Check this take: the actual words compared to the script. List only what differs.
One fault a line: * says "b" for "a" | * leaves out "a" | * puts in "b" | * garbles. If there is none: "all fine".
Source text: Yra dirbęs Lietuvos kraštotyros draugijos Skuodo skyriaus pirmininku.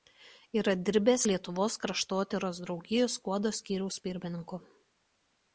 all fine